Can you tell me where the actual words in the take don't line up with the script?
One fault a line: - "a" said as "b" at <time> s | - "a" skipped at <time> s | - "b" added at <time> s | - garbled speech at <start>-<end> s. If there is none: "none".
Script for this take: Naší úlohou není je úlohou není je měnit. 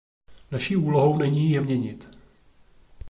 - "úlohou není je" skipped at 1.6 s